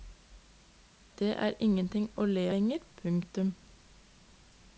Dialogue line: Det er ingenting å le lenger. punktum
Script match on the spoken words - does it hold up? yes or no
yes